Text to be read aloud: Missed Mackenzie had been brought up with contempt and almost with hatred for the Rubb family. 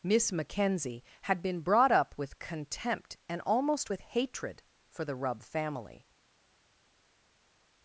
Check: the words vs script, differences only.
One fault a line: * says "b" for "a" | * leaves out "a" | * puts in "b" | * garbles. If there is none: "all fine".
* says "Miss" for "Missed"